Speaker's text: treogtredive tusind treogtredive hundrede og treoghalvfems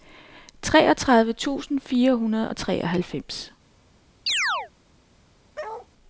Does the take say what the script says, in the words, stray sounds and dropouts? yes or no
no